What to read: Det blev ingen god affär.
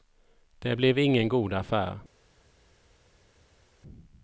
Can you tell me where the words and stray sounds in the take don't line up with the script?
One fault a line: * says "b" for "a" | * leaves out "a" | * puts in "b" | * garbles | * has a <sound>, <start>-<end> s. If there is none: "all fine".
all fine